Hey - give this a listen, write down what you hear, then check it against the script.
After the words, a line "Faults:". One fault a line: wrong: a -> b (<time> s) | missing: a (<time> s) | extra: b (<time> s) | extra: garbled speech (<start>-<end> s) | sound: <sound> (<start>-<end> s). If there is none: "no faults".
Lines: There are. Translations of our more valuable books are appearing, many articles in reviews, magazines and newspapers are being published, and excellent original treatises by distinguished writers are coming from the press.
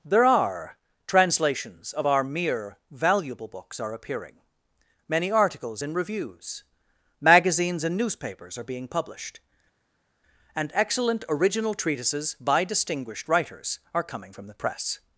There are. Translations of our mere valuable books are appearing, many articles in reviews, magazines and newspapers are being published, and excellent original treatises by distinguished writers are coming from the press.
Faults:
wrong: more -> mere (2.2 s)